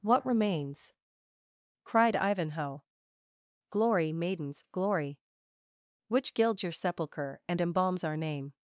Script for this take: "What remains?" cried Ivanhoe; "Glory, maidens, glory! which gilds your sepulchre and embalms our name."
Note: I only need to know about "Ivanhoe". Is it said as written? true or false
true